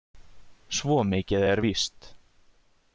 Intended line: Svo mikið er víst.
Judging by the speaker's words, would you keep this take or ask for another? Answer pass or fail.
pass